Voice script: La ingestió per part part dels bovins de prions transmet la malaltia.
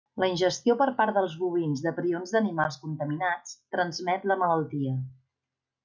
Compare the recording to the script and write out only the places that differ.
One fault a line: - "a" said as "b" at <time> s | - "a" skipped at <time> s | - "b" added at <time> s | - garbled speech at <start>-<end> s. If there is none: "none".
- "part" skipped at 1.1 s
- "d'animals contaminats" added at 2.4 s